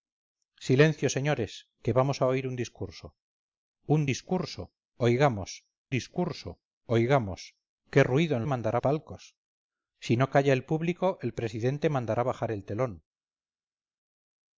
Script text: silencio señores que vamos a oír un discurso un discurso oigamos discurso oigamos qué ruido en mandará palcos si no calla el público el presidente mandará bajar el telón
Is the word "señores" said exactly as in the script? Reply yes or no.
yes